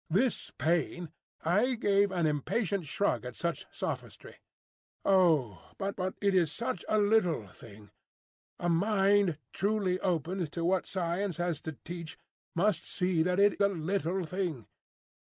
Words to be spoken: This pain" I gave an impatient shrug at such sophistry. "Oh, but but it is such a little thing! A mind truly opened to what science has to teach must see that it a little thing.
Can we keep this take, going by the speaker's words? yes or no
yes